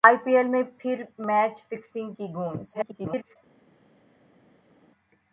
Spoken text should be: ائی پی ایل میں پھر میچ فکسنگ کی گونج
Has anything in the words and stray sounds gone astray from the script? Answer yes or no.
yes